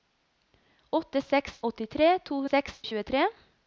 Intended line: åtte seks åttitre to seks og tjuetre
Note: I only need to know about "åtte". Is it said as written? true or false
true